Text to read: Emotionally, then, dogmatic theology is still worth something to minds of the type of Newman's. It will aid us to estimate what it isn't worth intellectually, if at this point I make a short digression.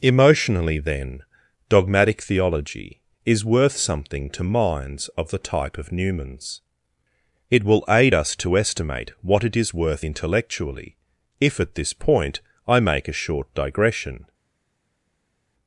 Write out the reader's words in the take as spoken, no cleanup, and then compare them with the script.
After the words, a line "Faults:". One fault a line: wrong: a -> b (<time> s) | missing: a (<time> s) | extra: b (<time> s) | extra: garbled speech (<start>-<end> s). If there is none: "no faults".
Emotionally, then, dogmatic theology is worth something to minds of the type of Newman's. It will aid us to estimate what it is worth intellectually, if at this point I make a short digression.
Faults:
missing: still (3.5 s)
wrong: isn't -> is (9.6 s)